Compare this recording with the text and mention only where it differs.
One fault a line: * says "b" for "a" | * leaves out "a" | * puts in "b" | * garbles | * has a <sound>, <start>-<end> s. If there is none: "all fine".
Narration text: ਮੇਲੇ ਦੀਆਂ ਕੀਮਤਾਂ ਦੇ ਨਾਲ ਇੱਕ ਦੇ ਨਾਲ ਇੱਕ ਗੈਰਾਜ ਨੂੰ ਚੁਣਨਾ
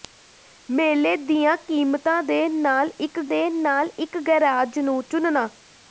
all fine